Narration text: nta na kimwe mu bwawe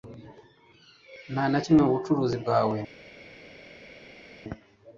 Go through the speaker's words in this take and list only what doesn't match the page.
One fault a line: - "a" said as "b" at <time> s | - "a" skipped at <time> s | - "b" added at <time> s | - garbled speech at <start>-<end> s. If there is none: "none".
- "bucuruzi" added at 2.0 s